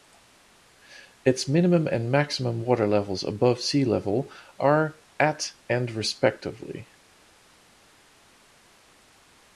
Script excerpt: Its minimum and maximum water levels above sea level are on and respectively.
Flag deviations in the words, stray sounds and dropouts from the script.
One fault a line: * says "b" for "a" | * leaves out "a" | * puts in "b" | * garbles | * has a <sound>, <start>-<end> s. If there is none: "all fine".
* says "at" for "on"